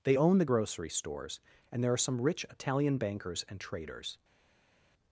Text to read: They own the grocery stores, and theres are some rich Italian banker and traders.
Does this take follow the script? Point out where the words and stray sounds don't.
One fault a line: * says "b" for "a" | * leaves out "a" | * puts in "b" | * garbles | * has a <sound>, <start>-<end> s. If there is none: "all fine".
* says "there" for "theres"
* says "bankers" for "banker"